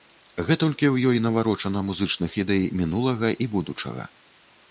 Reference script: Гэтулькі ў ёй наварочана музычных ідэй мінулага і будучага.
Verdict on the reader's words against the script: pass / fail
pass